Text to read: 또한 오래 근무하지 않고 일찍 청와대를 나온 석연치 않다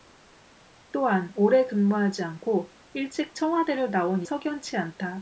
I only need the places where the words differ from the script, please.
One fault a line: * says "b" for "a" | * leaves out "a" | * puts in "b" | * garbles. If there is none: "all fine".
all fine